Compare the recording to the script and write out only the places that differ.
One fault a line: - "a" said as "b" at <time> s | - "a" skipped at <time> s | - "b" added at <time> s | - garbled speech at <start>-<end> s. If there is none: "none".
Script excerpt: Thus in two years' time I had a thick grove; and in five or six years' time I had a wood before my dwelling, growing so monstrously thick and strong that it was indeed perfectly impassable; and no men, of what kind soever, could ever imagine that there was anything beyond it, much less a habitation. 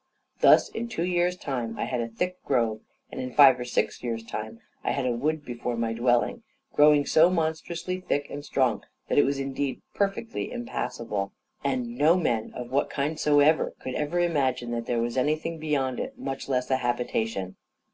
none